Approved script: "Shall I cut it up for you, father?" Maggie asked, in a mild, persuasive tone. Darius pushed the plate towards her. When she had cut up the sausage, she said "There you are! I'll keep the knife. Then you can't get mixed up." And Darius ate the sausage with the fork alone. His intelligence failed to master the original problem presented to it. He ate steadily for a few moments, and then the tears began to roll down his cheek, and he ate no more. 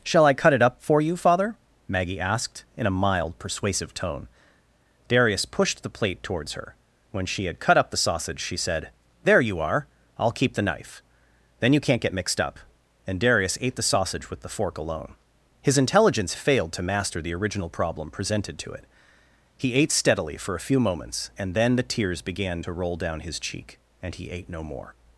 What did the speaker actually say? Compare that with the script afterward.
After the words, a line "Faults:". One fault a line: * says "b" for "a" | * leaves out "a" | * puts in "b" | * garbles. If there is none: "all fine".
"Shall I cut it up for you, father?" Maggie asked, in a mild, persuasive tone. Darius pushed the plate towards her. When she had cut up the sausage, she said "There you are! I'll keep the knife. Then you can't get mixed up." And Darius ate the sausage with the fork alone. His intelligence failed to master the original problem presented to it. He ate steadily for a few moments, and then the tears began to roll down his cheek, and he ate no more.
Faults:
all fine